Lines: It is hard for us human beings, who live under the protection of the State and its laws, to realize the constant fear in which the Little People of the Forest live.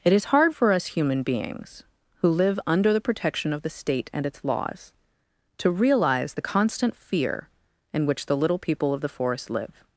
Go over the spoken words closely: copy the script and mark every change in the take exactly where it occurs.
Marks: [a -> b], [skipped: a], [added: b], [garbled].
It is hard for us human beings, who live under the protection of the State and its laws, to realize the constant fear in which the Little People of the Forest live.